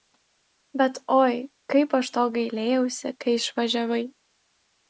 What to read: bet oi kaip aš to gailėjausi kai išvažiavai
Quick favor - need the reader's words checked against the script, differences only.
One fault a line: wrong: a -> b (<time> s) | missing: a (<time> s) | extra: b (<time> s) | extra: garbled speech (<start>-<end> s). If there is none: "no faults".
no faults